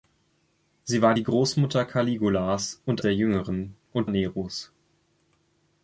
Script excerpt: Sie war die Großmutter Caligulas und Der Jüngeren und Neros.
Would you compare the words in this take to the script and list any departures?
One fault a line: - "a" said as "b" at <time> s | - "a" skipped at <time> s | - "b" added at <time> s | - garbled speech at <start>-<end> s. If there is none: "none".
none